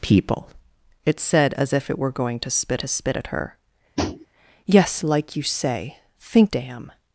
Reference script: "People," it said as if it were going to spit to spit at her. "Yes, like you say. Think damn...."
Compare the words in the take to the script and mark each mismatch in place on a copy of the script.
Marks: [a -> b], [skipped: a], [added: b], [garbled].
"People," it said as if it were going to spit to spit at her. "Yes, like you say. Think damn...."